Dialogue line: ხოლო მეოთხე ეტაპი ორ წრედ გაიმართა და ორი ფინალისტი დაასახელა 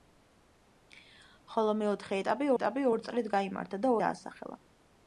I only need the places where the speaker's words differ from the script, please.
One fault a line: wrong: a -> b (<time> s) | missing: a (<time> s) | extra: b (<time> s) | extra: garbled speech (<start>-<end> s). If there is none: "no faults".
extra: ეტაპი (2.5 s)
missing: ორი ფინალისტი (3.9 s)